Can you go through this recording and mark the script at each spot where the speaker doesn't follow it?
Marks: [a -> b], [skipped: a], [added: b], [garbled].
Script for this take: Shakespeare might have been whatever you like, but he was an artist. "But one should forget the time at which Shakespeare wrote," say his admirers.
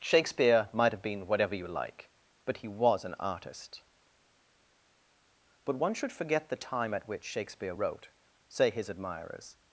Shakespeare might have been whatever you like, but he was an artist. "But one should forget the time at which Shakespeare wrote," say his admirers.